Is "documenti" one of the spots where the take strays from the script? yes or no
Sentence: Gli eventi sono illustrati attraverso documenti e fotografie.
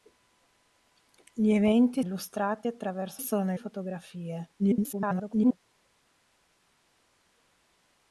yes